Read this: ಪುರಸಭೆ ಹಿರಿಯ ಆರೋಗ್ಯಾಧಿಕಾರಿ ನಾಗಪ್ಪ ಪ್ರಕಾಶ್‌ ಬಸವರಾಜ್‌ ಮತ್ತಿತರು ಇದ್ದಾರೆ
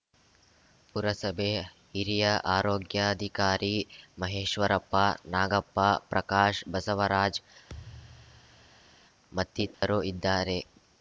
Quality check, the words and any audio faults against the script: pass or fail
fail